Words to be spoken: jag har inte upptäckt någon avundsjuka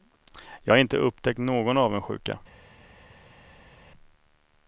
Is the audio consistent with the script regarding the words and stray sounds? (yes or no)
yes